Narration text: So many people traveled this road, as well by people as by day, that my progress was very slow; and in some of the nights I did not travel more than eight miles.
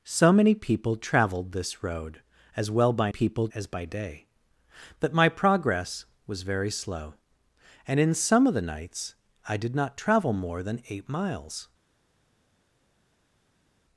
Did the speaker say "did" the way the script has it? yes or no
yes